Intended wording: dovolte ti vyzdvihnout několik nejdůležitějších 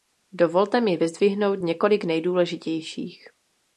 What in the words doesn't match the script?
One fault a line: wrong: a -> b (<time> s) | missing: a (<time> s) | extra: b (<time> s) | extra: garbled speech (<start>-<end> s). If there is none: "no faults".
wrong: ti -> mi (0.8 s)